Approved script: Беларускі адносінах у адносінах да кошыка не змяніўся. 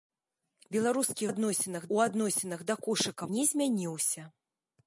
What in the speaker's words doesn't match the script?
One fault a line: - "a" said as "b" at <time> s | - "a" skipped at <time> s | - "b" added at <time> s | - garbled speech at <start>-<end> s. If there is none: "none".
none